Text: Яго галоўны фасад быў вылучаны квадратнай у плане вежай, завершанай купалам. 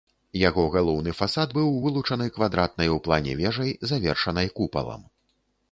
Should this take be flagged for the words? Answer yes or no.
no